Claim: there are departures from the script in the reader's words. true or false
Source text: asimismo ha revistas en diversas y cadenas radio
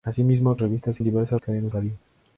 false